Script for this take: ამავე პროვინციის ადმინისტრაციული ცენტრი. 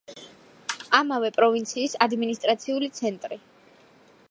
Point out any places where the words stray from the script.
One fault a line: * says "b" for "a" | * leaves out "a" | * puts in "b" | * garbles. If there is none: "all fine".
all fine